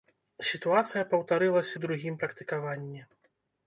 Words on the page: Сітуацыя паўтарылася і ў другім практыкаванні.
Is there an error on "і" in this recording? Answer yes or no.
yes